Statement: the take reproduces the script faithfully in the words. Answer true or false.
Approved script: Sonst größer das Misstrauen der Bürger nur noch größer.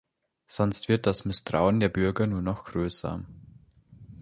false